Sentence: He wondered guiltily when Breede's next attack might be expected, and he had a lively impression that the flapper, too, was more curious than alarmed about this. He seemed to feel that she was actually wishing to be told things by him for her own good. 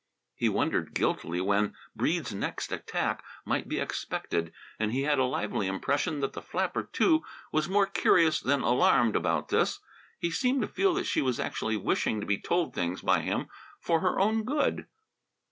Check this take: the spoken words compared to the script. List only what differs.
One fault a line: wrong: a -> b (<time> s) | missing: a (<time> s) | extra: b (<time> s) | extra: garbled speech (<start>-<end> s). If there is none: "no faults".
no faults